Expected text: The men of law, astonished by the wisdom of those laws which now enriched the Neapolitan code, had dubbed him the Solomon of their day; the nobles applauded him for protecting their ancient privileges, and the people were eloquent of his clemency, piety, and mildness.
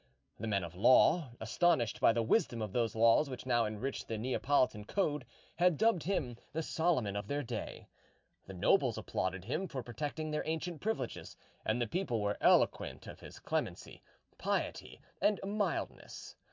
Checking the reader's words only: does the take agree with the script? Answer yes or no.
yes